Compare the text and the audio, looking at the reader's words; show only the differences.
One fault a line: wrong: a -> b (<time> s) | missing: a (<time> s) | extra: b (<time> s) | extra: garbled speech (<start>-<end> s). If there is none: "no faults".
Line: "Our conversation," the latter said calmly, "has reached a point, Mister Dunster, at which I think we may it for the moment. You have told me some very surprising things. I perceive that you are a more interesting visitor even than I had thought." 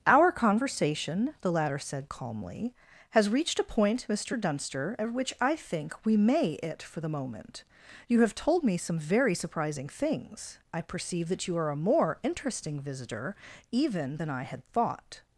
no faults